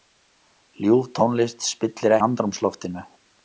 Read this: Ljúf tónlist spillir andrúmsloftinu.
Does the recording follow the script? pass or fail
pass